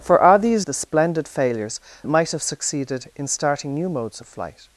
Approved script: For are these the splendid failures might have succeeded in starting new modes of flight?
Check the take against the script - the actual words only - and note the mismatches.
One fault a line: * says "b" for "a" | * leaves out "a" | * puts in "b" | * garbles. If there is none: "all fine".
all fine